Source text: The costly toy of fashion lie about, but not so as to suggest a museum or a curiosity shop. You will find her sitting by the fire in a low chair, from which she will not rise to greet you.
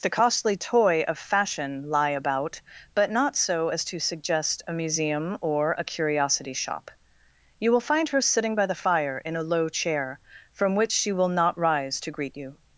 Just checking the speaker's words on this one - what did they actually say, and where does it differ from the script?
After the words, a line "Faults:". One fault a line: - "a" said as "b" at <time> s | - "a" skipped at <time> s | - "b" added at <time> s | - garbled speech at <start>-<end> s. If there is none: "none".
The costly toy of fashion lie about, but not so as to suggest a museum or a curiosity shop. You will find her sitting by the fire in a low chair, from which she will not rise to greet you.
Faults:
none